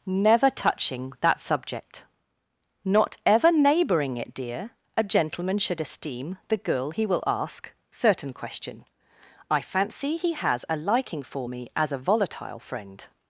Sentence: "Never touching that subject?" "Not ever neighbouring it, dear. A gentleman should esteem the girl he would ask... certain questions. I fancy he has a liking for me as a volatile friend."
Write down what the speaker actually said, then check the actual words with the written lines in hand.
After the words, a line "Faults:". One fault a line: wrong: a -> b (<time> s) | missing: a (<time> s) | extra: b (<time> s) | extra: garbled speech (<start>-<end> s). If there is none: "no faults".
"Never touching that subject?" "Not ever neighbouring it, dear. A gentleman should esteem the girl he will ask... certain question. I fancy he has a liking for me as a volatile friend."
Faults:
wrong: would -> will (7.0 s)
wrong: questions -> question (8.3 s)